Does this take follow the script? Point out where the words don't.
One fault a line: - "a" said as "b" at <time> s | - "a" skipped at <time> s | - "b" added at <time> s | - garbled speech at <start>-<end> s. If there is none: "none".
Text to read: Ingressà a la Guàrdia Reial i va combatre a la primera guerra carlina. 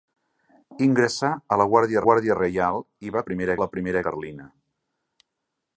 - "Guàrdia" added at 2.1 s
- "combatre" said as "primera" at 3.3 s
- "guerra" skipped at 4.0 s